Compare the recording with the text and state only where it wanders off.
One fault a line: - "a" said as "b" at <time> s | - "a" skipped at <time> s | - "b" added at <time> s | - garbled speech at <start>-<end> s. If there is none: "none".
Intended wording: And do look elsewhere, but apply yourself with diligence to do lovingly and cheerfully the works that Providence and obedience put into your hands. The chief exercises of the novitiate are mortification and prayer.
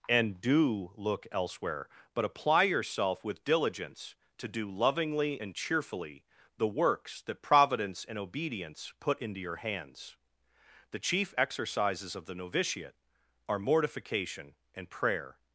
none